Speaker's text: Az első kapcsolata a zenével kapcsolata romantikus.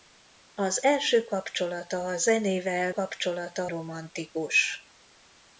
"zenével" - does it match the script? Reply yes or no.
yes